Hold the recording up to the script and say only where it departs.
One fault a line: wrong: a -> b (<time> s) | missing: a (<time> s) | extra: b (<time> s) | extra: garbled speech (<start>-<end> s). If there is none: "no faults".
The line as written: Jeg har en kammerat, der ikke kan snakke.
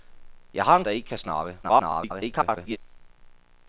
missing: kammerat (0.8 s)
extra: garbled speech (1.6-2.8 s)